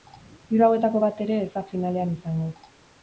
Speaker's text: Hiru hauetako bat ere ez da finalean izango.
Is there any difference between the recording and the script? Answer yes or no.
no